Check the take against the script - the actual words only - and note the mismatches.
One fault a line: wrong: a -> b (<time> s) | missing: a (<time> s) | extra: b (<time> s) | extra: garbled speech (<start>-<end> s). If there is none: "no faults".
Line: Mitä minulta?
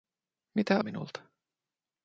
no faults